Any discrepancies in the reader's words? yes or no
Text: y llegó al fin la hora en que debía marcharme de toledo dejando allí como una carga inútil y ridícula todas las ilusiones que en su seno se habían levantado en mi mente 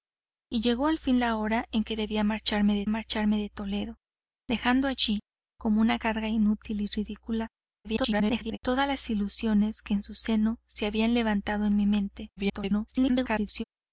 yes